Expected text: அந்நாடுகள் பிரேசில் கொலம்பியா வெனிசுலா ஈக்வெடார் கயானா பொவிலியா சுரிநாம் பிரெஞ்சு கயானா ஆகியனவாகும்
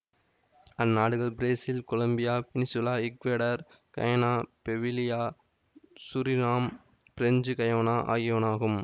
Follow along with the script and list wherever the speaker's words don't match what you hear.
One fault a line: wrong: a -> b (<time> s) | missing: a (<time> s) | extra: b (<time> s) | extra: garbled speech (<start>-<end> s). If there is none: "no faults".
no faults